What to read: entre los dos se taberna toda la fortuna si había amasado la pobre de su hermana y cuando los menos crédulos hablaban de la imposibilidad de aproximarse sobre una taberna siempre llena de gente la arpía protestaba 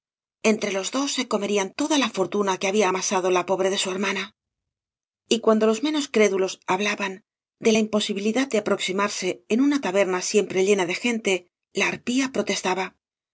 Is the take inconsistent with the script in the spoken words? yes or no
yes